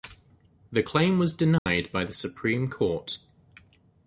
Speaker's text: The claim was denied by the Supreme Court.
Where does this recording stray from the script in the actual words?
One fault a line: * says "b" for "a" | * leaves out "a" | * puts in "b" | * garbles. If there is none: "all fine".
all fine